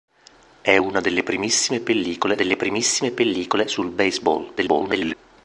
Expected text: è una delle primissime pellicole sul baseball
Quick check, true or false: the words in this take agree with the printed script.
false